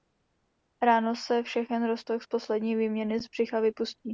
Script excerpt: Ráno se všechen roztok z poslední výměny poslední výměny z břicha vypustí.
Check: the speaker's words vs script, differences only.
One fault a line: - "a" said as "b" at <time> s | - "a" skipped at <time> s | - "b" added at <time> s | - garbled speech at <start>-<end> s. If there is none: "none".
- "poslední výměny" skipped at 3.2 s